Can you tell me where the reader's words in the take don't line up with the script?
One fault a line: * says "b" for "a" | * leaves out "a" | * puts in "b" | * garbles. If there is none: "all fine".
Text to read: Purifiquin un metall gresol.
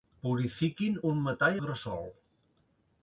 all fine